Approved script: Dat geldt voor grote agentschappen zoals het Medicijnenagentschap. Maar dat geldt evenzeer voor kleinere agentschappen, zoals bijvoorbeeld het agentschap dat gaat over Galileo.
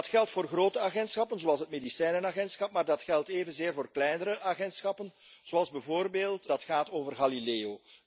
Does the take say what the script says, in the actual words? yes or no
no